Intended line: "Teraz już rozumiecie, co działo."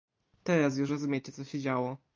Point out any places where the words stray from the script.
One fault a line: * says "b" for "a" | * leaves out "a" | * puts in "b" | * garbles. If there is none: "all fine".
* puts in "się"